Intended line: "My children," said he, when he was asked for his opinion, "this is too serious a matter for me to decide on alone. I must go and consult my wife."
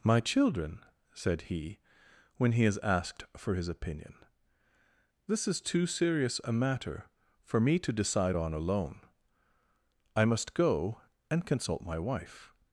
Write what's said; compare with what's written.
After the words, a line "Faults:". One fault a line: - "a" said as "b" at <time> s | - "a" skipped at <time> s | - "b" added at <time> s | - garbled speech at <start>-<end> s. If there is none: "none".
"My children," said he, when he is asked for his opinion, "this is too serious a matter for me to decide on alone. I must go and consult my wife."
Faults:
- "was" said as "is" at 2.6 s